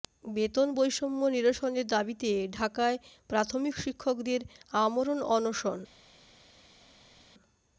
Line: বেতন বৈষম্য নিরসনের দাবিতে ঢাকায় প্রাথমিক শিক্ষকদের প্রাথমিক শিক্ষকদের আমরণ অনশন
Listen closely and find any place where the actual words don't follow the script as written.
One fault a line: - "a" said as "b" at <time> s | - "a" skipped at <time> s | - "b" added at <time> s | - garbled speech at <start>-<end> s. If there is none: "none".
- "প্রাথমিক শিক্ষকদের" skipped at 4.4 s